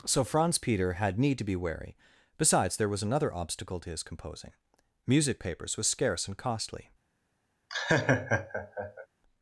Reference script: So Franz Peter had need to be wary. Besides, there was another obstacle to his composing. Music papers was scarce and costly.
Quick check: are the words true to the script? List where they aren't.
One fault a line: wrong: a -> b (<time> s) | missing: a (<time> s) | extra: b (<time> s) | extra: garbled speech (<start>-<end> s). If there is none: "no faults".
no faults